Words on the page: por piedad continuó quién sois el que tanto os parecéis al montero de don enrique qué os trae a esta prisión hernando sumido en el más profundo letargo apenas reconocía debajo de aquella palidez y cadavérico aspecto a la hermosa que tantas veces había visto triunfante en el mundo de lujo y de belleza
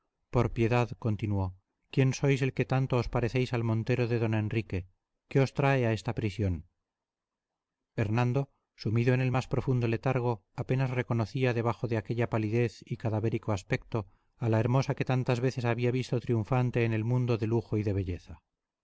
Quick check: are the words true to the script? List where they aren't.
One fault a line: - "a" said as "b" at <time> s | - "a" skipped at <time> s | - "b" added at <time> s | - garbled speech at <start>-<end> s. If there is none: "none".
none